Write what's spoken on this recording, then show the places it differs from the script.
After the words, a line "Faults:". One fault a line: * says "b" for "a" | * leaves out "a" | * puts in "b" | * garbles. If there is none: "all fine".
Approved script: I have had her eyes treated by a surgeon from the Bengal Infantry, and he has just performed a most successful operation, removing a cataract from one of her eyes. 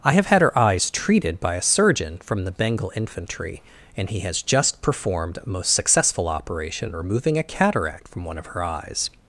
I have had her eyes treated by a surgeon from the Bengal Infantry, and he has just performed a most successful operation, removing a cataract from one of her eyes.
Faults:
all fine